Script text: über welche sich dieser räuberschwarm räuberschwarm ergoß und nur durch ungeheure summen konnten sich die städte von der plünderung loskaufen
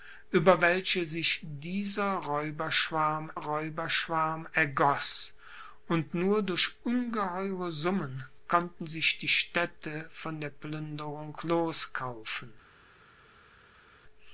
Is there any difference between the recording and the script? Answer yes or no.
no